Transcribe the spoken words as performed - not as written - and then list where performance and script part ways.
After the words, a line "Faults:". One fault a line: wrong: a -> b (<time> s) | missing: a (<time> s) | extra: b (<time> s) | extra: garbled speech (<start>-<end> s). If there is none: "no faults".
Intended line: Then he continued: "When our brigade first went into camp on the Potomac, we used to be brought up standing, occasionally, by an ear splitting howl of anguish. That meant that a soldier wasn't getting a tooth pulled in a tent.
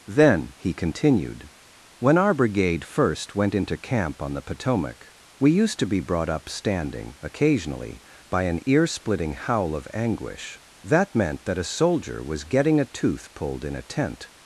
Then he continued: "When our brigade first went into camp on the Potomac, we used to be brought up standing, occasionally, by an ear splitting howl of anguish. That meant that a soldier was getting a tooth pulled in a tent.
Faults:
wrong: wasn't -> was (12.2 s)